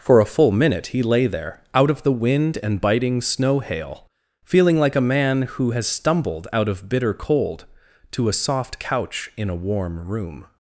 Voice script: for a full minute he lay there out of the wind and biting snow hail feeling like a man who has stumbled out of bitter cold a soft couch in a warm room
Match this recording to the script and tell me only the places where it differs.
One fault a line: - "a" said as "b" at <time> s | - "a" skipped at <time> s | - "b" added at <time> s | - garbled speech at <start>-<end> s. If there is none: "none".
- "to" added at 8.1 s